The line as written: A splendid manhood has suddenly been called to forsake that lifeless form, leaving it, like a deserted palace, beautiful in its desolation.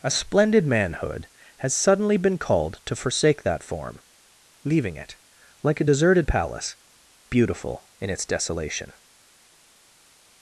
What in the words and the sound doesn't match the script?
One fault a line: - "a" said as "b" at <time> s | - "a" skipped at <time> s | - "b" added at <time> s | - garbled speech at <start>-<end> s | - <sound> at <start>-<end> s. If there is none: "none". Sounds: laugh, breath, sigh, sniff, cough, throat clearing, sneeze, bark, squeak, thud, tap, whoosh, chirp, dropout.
- "lifeless" skipped at 3.6 s